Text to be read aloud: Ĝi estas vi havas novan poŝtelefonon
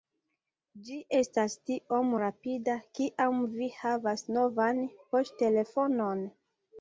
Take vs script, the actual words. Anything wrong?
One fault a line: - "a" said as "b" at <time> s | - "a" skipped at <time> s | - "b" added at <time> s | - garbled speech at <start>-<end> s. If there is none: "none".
- "tiom rapida kiam" added at 1.7 s